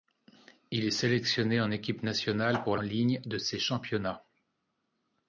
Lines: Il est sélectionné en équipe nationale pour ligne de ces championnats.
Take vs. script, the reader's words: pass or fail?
pass